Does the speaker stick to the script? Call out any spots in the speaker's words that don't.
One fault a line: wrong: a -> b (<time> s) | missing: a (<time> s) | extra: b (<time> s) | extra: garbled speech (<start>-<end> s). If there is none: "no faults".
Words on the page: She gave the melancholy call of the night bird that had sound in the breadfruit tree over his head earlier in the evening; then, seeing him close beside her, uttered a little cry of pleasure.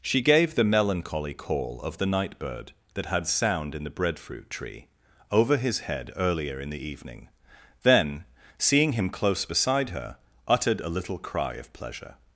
no faults